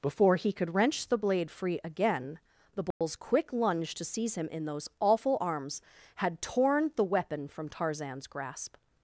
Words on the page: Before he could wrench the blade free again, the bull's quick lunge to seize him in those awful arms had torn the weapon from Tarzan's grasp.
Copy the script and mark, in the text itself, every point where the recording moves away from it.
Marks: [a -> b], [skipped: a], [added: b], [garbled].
Before he could wrench the blade free again, the bull's quick lunge to seize him in those awful arms had torn the weapon from Tarzan's grasp.